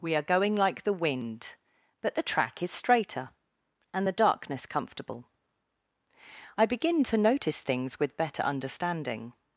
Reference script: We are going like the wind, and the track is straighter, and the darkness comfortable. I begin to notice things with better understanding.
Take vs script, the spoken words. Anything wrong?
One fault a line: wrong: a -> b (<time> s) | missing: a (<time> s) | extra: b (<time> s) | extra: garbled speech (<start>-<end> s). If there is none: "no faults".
wrong: and -> but (2.0 s)